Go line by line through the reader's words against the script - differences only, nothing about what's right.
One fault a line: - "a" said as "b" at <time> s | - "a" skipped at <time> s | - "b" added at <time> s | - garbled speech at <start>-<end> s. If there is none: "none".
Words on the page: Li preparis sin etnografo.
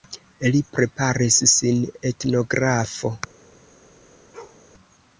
none